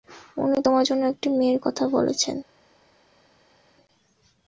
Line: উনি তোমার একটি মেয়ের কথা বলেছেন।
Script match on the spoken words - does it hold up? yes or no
no